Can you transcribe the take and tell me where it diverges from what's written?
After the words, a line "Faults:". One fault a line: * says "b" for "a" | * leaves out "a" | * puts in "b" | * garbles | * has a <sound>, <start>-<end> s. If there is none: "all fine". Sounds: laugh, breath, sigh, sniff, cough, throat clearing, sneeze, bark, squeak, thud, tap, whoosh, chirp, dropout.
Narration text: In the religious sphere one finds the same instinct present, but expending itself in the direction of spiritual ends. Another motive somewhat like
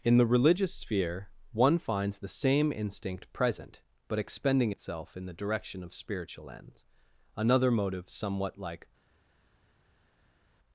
In the religious sphere one finds the same instinct present, but expending itself in the direction of spiritual ends. Another motive somewhat like
Faults:
all fine